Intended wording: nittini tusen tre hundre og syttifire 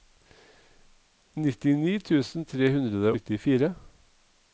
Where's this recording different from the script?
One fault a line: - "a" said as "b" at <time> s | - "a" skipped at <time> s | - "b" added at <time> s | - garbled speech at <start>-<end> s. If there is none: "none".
- "og" skipped at 3.1 s